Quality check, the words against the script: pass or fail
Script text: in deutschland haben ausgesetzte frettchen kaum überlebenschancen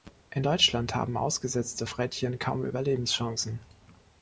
pass